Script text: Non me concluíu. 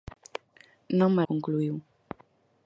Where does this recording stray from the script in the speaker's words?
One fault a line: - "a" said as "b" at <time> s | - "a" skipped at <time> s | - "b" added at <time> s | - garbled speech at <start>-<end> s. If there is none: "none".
none